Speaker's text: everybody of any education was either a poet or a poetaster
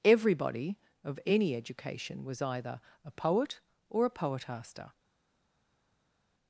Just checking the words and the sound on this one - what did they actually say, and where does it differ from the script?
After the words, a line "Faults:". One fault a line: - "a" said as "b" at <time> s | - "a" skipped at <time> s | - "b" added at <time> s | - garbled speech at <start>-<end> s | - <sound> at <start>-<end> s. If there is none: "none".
everybody of any education was either a poet or a poetaster
Faults:
none